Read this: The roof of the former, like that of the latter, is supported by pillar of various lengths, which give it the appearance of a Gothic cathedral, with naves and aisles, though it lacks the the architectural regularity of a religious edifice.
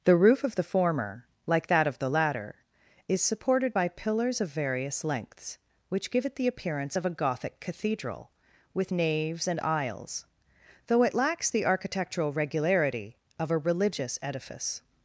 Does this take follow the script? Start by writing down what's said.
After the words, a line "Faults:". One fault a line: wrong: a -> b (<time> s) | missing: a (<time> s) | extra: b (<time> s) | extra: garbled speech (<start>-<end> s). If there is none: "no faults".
The roof of the former, like that of the latter, is supported by pillars of various lengths, which give it the appearance of a Gothic cathedral, with naves and aisles, though it lacks the architectural regularity of a religious edifice.
Faults:
wrong: pillar -> pillars (3.9 s)
missing: the (11.6 s)